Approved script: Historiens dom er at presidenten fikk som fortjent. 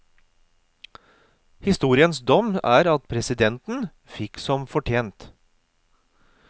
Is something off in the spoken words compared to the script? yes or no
no